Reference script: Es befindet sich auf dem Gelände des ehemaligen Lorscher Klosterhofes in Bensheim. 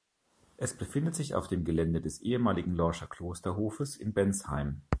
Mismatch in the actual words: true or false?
false